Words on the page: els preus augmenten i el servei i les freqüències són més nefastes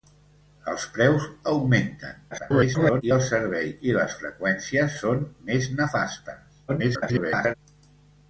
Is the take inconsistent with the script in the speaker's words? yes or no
yes